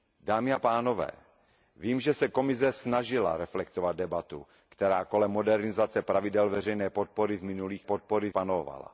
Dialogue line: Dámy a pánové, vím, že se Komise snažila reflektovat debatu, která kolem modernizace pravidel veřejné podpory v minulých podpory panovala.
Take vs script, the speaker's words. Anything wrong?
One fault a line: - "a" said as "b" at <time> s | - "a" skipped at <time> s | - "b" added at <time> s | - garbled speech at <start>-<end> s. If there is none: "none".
none